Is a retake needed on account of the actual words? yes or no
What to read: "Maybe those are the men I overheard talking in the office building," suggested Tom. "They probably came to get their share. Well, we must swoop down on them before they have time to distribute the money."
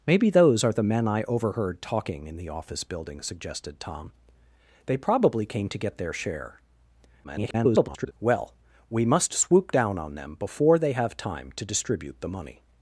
yes